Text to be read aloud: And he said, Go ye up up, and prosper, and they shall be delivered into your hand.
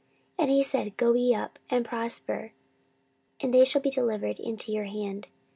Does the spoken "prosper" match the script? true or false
true